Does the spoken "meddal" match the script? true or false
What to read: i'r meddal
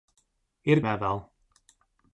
true